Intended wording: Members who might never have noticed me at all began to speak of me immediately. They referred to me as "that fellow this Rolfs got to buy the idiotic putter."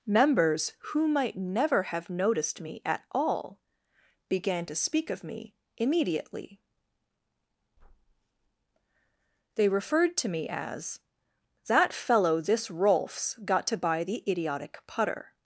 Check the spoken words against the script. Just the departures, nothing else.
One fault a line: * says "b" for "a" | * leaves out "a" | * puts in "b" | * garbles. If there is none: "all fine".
all fine